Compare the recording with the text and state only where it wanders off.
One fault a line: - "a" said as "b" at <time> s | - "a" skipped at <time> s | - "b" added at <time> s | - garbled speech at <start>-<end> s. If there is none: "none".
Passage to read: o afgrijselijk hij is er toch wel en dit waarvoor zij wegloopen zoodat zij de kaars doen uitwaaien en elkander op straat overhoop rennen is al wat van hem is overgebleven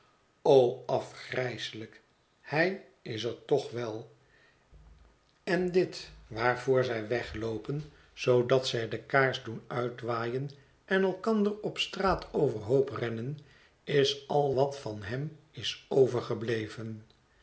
none